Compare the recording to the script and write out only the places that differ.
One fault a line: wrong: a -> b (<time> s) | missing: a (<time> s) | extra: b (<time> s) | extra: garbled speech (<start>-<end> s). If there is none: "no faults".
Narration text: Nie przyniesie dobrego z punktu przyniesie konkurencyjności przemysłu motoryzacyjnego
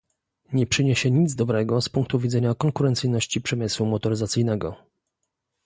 extra: nic (1.1 s)
wrong: przyniesie -> widzenia (2.2 s)